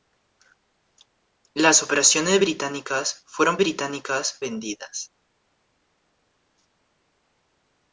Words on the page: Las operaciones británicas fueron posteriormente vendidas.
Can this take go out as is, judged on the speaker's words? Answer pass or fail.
fail